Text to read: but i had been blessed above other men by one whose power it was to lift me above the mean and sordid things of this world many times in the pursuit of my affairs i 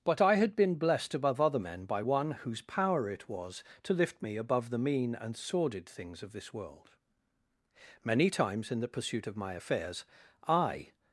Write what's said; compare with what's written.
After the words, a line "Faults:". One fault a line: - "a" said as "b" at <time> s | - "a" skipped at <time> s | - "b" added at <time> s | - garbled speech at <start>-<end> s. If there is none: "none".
but i had been blessed above other men by one whose power it was to lift me above the mean and sordid things of this world many times in the pursuit of my affairs i
Faults:
none